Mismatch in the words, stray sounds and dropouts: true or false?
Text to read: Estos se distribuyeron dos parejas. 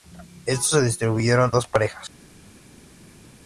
false